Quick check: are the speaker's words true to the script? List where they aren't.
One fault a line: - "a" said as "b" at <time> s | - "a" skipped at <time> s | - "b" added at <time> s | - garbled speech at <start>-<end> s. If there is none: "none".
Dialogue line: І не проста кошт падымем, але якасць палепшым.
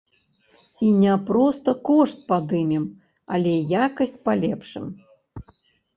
none